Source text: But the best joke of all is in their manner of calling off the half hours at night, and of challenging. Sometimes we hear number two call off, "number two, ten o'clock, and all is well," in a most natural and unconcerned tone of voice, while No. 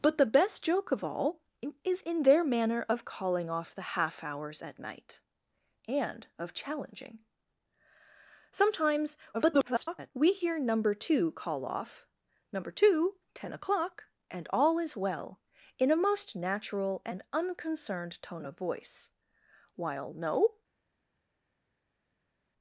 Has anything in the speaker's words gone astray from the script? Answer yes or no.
yes